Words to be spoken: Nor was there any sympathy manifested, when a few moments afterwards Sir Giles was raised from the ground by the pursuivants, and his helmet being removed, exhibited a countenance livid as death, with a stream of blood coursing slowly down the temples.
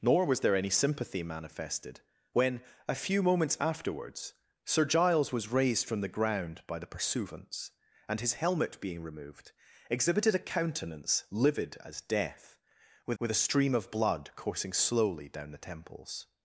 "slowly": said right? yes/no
yes